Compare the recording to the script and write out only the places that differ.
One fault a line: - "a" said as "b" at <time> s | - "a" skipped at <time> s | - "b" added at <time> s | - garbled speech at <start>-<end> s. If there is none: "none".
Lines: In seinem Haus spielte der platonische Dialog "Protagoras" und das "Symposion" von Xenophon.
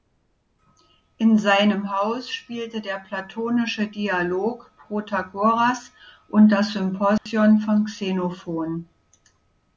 none